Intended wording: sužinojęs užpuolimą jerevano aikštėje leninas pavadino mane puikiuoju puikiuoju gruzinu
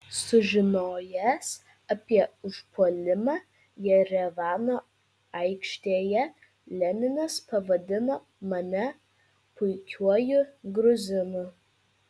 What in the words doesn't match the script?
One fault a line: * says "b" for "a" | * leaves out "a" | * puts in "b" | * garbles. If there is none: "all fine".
* puts in "apie"
* leaves out "puikiuoju"